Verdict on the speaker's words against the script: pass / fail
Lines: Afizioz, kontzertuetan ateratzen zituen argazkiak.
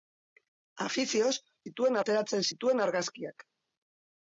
fail